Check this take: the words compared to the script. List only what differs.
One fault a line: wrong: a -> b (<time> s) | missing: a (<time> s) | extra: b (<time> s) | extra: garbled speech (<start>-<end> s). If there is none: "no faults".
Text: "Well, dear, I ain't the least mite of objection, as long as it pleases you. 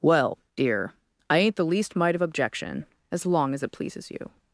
no faults